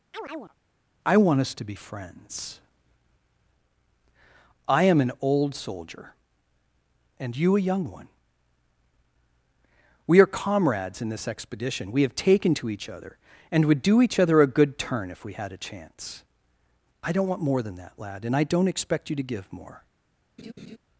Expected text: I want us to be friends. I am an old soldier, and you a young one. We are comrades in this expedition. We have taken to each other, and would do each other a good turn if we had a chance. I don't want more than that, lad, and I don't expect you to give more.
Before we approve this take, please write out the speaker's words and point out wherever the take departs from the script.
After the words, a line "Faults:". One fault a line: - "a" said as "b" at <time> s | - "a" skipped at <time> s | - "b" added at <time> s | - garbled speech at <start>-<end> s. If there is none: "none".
I want us to be friends. I am an old soldier, and you a young one. We are comrades in this expedition. We have taken to each other, and would do each other a good turn if we had a chance. I don't want more than that, lad, and I don't expect you to give more.
Faults:
none